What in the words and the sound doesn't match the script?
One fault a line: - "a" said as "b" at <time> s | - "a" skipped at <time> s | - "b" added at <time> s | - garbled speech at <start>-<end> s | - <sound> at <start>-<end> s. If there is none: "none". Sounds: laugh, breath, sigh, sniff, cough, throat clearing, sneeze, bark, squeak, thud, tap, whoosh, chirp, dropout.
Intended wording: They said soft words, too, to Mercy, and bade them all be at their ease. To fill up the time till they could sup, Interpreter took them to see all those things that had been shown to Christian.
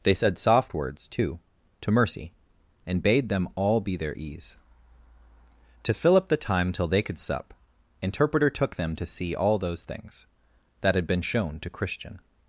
- "at" skipped at 4.0 s